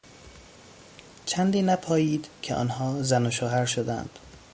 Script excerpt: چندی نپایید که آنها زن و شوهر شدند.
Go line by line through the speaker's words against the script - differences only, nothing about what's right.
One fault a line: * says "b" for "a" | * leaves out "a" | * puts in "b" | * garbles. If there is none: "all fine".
all fine